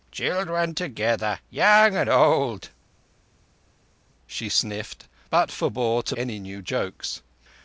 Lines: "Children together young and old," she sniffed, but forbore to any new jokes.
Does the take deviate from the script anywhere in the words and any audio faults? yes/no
no